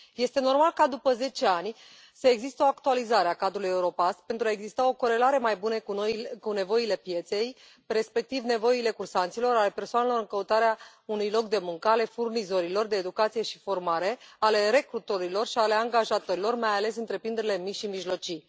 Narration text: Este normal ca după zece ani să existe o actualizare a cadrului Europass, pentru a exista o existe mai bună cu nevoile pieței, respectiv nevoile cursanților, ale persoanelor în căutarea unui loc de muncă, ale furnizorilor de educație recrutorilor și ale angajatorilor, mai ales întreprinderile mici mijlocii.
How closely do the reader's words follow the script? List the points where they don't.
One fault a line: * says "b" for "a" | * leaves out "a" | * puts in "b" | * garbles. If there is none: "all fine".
* says "corelare" for "existe"
* puts in "și formare ale"
* puts in "și"